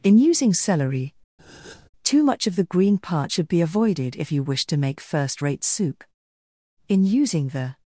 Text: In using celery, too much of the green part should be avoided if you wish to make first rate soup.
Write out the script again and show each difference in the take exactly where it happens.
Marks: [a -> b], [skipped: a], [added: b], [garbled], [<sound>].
In using celery, [breath] too much of the green part should be avoided if you wish to make first rate soup. [added: In using the]